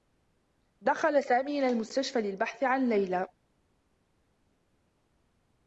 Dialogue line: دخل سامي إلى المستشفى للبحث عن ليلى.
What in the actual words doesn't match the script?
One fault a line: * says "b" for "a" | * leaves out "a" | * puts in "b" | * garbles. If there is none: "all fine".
all fine